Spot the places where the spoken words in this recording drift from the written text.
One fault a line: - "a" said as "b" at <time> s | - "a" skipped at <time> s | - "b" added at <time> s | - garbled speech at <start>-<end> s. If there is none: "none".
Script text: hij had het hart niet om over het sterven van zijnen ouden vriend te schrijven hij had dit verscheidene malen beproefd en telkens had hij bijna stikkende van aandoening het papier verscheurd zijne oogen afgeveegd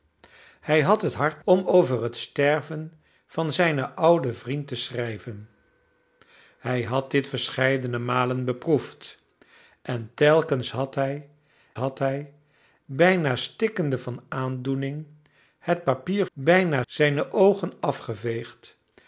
- "niet" skipped at 1.4 s
- "had hij" added at 11.7 s
- "verscheurd" said as "bijna" at 16.3 s